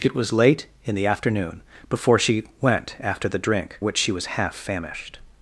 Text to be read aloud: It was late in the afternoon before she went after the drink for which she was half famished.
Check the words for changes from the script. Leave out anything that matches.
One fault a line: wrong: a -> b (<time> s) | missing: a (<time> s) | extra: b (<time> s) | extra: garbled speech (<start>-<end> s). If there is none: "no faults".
missing: for (3.8 s)